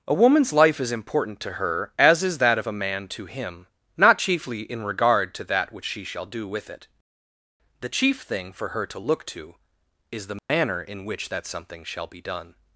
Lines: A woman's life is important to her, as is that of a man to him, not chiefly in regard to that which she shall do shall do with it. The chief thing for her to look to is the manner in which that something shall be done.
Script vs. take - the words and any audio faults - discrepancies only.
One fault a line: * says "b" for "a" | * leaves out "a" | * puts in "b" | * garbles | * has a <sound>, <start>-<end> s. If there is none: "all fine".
* leaves out "shall do"
* has a dropout, 10.4-10.5 s